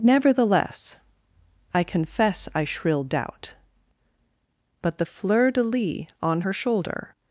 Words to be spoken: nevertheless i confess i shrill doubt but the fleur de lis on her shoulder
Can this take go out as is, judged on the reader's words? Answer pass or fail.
pass